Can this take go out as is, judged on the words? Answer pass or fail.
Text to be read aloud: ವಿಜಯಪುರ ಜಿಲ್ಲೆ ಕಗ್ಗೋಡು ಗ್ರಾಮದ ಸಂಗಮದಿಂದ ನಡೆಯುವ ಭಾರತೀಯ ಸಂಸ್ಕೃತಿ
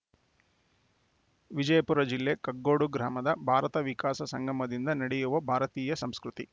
fail